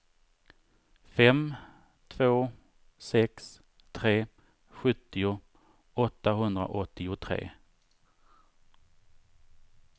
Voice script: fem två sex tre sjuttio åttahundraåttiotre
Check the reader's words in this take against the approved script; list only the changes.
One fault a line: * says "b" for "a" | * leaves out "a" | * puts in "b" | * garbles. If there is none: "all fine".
all fine